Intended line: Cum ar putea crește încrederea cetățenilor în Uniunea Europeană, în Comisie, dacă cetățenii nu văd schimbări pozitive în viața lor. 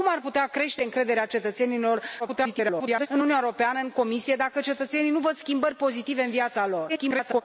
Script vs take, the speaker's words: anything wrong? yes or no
yes